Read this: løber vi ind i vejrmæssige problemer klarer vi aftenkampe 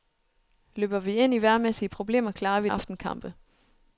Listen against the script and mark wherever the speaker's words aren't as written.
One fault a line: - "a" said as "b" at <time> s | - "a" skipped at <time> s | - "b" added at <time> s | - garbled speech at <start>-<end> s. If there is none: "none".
none